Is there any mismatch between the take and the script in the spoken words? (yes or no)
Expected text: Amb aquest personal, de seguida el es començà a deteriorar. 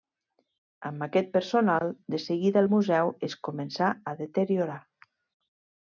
yes